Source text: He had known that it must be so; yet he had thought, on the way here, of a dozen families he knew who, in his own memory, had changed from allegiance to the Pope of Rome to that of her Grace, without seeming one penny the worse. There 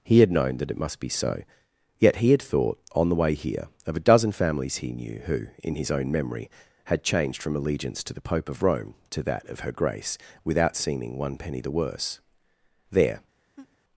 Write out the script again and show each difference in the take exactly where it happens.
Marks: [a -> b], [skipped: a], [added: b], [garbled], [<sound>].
He had known that it must be so; yet he had thought, on the way here, of a dozen families he knew who, in his own memory, had changed from allegiance to the Pope of Rome to that of her Grace, without seeming one penny the worse. There [laugh]